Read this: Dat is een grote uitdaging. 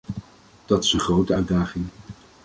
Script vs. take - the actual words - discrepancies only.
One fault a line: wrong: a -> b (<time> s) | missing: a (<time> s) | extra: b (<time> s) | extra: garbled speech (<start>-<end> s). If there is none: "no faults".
no faults